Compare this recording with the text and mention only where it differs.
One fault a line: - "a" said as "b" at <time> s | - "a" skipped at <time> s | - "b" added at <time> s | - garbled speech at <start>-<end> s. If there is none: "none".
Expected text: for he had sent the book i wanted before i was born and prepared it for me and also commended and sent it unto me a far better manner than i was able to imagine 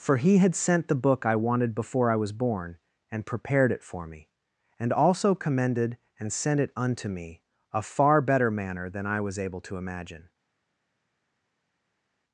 none